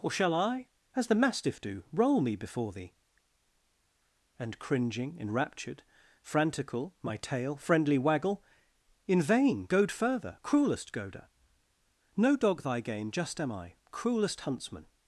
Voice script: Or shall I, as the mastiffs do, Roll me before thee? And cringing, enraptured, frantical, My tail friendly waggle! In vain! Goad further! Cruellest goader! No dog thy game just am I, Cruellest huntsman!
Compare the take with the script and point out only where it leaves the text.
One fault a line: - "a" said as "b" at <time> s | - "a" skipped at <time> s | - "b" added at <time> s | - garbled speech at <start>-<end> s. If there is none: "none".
- "mastiffs" said as "mastiff" at 1.1 s